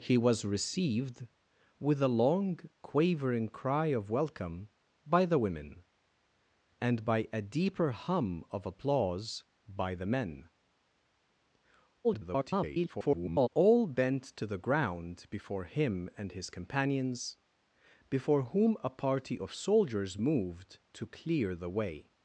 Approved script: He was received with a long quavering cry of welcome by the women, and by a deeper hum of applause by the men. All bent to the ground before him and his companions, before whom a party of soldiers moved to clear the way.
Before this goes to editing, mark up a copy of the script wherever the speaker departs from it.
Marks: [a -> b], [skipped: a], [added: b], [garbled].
He was received with a long quavering cry of welcome by the women, and by a deeper hum of applause by the men. [garbled] All bent to the ground before him and his companions, before whom a party of soldiers moved to clear the way.